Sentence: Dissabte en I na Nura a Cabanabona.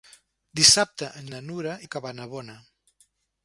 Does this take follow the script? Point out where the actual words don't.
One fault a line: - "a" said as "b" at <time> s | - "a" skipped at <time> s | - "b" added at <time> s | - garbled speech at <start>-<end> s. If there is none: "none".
none